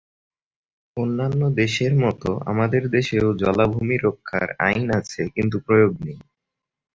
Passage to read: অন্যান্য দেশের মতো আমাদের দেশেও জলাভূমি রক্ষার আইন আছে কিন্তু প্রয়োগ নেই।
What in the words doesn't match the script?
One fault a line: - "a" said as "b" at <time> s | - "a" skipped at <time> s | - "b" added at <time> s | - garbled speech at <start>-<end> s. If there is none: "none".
none